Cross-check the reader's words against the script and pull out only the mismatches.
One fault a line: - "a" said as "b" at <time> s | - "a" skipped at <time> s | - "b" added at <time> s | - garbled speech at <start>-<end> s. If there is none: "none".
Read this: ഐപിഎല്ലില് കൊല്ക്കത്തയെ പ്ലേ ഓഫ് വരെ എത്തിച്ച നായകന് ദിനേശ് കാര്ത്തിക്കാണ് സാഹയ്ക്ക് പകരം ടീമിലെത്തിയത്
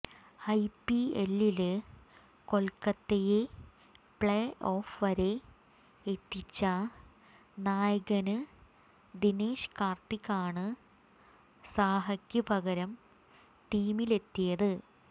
none